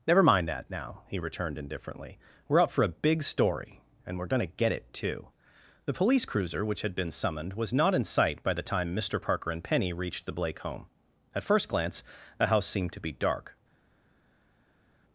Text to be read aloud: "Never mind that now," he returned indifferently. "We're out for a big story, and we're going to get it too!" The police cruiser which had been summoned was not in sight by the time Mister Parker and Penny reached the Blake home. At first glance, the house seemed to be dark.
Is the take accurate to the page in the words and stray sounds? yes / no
yes